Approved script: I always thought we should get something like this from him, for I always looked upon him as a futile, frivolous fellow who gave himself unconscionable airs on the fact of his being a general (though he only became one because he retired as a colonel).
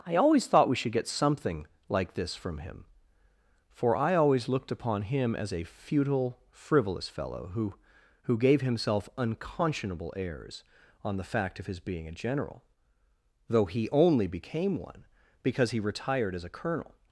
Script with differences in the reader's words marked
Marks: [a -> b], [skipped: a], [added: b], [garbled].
I always thought we should get something like this from him, for I always looked upon him as a futile, frivolous fellow who [added: who] gave himself unconscionable airs on the fact of his being a general (though he only became one because he retired as a colonel).